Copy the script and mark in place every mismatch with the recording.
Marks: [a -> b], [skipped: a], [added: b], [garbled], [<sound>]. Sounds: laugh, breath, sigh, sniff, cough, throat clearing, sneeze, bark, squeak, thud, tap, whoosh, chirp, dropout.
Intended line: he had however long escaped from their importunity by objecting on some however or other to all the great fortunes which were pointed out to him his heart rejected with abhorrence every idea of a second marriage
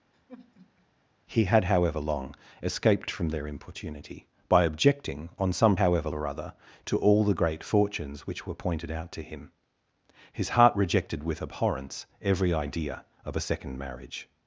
[sigh] he had however long escaped from their importunity by objecting on some however or other to all the great fortunes which were pointed out to him his heart rejected with abhorrence every idea of a second marriage